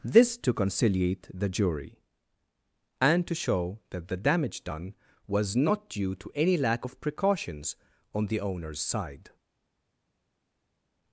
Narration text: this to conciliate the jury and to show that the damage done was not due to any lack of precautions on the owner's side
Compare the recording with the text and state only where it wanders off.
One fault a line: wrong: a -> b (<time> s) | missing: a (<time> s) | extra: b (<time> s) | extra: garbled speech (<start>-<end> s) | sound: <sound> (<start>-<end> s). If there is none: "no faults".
no faults